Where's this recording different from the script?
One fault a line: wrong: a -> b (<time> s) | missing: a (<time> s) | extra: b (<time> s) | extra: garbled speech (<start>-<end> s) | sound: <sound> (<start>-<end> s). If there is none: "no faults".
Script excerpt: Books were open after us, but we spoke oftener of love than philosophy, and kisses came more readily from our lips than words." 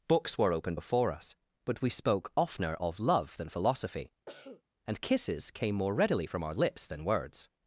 wrong: after -> before (0.7 s)
sound: cough (4.3-4.6 s)